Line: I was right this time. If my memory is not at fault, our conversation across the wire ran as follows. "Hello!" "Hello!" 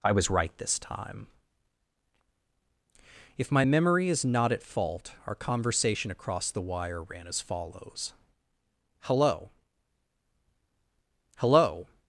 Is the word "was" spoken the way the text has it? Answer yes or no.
yes